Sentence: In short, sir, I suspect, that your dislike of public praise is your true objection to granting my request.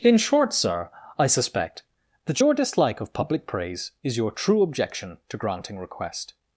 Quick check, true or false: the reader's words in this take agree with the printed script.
false